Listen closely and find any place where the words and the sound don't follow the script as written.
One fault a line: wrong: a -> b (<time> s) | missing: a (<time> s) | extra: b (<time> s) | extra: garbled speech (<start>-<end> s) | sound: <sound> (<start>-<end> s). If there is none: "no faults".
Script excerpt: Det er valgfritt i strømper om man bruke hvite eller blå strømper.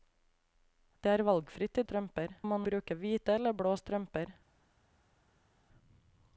no faults